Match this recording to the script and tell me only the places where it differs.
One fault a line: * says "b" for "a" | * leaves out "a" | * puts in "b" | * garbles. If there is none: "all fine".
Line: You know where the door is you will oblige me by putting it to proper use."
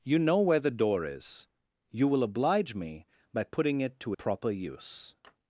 all fine